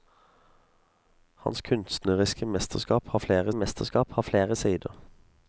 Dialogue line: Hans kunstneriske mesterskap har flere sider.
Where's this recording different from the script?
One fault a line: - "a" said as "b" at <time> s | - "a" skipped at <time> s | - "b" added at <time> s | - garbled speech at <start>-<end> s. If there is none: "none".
- "mesterskap har flere" added at 3.5 s